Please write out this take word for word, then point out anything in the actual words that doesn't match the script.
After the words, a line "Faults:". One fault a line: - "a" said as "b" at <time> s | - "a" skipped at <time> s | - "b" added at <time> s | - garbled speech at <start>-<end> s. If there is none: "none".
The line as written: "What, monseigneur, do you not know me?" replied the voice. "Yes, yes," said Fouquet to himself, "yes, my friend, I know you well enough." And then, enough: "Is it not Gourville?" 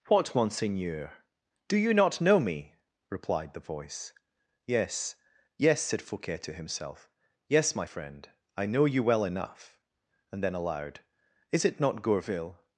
"What, monseigneur, do you not know me?" replied the voice. "Yes, yes," said Fouquet to himself, "yes, my friend, I know you well enough." And then, aloud: "Is it not Gourville?"
Faults:
- "enough" said as "aloud" at 10.5 s